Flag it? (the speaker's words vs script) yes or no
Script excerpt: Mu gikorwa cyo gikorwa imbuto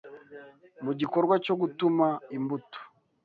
yes